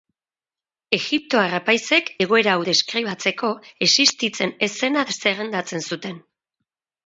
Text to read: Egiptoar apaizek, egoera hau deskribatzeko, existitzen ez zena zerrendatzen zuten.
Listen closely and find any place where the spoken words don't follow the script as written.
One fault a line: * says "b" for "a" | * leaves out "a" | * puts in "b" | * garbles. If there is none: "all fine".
all fine